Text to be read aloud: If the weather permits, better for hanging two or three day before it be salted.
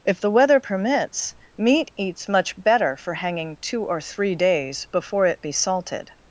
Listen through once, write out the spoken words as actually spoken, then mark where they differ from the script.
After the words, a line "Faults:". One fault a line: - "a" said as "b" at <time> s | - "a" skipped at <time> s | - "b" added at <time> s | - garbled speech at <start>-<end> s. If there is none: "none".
If the weather permits, meat eats much better for hanging two or three days before it be salted.
Faults:
- "meat eats much" added at 1.6 s
- "day" said as "days" at 4.3 s